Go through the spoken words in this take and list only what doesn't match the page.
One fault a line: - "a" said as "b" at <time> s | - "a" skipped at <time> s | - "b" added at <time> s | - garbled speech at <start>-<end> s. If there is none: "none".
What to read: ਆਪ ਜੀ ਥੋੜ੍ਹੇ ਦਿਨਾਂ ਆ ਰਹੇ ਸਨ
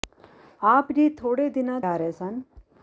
none